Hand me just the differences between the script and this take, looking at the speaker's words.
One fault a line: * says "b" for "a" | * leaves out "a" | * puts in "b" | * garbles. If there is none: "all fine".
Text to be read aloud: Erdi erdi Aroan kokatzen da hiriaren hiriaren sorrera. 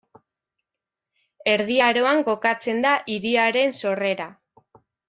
* leaves out "erdi"
* leaves out "hiriaren"